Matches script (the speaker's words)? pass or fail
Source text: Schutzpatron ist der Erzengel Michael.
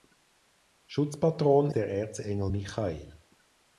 fail